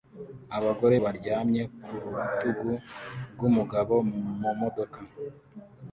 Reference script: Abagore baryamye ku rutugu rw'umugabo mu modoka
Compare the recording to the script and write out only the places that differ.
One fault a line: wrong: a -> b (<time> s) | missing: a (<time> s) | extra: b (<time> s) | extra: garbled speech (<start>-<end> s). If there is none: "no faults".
no faults